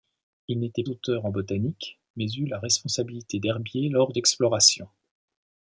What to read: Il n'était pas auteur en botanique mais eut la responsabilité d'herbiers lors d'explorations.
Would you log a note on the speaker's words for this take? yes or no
yes